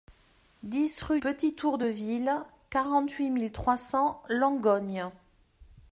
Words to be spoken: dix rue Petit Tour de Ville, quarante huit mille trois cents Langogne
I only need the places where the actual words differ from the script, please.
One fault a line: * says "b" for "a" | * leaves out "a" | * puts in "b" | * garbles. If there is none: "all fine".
all fine